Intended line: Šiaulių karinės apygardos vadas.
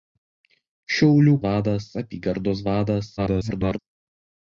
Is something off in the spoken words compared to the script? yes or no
yes